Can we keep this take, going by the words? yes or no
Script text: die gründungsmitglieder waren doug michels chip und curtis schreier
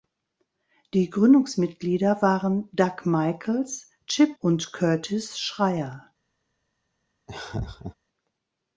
yes